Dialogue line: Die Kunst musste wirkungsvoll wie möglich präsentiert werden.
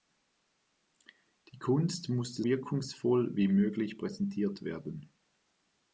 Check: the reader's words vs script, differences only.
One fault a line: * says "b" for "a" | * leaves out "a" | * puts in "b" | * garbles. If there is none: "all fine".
all fine